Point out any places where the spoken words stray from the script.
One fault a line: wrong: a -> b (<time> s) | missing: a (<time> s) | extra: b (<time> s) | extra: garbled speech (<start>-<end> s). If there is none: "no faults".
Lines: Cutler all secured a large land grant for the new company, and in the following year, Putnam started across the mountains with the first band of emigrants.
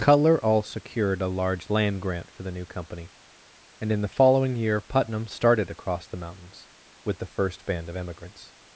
no faults